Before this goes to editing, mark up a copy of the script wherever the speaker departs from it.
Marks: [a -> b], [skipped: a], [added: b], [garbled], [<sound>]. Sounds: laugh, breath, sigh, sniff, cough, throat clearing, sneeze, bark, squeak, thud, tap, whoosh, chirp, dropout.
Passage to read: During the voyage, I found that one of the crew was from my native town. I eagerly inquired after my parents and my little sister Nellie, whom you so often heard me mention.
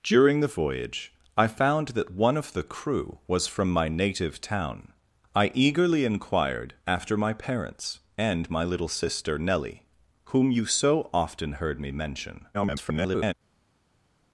During the voyage, I found that one of the crew was from my native town. I eagerly inquired after my parents and my little sister Nellie, whom you so often heard me mention. [garbled]